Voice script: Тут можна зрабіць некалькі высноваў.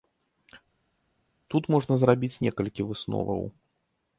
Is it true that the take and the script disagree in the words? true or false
false